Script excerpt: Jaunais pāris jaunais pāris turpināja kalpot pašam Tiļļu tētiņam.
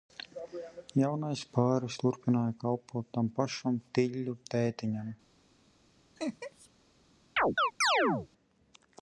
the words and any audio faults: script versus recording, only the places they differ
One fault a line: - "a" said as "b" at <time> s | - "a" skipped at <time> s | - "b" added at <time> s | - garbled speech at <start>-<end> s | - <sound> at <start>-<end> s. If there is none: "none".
- "jaunais pāris" skipped at 2.0 s
- "tam" added at 3.2 s
- laugh at 6.2-6.7 s
- chirp at 7.4-8.3 s